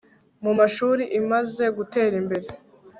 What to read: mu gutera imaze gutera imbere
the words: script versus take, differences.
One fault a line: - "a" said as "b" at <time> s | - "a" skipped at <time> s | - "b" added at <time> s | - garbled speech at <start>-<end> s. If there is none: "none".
- "gutera" said as "mashuri" at 0.6 s